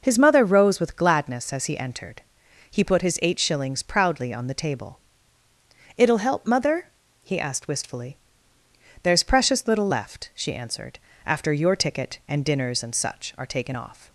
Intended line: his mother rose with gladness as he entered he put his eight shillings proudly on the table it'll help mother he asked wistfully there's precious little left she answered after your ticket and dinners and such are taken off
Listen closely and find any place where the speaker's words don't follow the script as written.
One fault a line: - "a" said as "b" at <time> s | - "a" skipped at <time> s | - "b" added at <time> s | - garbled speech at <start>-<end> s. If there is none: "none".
none